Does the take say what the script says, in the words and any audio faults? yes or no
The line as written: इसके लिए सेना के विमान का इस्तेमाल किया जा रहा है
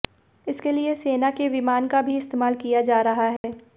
no